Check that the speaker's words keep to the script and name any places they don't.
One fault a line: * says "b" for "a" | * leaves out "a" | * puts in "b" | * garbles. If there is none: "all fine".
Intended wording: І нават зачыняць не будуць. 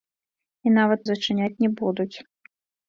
all fine